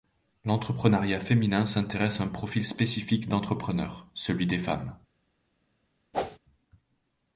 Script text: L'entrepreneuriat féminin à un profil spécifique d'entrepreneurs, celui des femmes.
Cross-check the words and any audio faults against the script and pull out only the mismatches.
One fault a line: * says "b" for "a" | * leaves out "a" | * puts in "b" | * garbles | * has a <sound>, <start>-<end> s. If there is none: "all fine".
* puts in "s'intéresse"
* has a whoosh, 6.1-6.4 s